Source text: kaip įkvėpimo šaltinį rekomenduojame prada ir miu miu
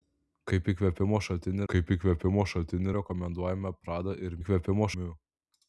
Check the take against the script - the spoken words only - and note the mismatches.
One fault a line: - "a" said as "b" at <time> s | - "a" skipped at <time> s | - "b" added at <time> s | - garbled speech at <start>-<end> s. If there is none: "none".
- "kaip įkvėpimo šaltinį" added at 1.7 s
- "miu" said as "įkvėpimo" at 4.4 s